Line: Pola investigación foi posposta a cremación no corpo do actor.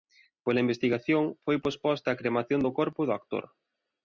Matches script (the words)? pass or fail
fail